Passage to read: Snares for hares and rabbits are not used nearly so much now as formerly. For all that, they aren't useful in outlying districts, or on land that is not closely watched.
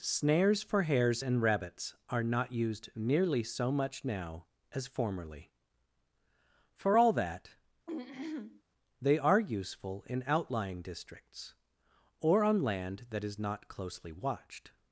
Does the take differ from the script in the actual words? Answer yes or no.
yes